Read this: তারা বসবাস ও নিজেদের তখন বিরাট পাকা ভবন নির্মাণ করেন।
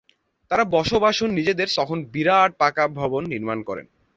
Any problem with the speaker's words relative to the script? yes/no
no